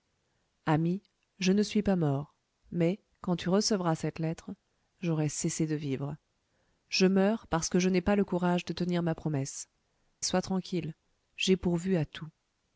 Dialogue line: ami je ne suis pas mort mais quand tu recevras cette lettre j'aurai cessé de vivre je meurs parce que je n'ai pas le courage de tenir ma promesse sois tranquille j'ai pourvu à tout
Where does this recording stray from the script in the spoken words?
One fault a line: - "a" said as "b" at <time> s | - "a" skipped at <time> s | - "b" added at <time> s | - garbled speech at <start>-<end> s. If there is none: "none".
none